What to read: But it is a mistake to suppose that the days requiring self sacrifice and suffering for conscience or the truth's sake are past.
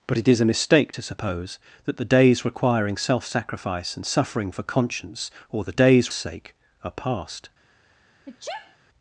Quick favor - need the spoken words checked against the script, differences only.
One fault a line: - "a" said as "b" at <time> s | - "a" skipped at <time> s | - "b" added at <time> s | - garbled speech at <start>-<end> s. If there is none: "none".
- "truth's" said as "days" at 5.7 s